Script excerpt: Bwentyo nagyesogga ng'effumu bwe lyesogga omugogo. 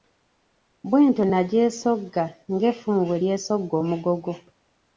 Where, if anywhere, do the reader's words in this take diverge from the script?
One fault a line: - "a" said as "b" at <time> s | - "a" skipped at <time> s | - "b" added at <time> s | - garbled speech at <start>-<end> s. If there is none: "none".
none